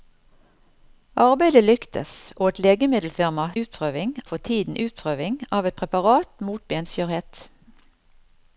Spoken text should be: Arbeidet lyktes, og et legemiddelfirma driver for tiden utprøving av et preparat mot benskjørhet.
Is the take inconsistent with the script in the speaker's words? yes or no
yes